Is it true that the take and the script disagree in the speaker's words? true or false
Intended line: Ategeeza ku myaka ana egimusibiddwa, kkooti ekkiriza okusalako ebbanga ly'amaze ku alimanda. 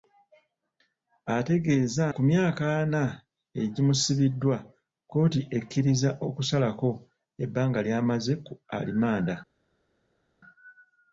false